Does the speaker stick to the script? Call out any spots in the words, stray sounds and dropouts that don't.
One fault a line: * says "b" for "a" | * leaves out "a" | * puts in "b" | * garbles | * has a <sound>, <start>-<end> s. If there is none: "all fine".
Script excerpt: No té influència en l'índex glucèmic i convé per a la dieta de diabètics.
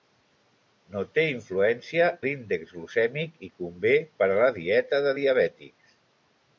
* leaves out "en"